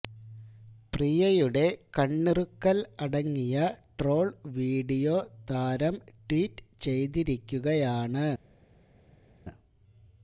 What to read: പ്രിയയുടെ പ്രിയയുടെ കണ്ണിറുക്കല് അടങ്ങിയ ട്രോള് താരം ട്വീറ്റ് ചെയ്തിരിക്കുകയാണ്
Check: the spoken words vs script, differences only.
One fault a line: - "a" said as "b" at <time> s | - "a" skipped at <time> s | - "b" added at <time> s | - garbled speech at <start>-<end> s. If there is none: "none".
- "പ്രിയയുടെ" skipped at 1.6 s
- "വീഡിയോ" added at 4.6 s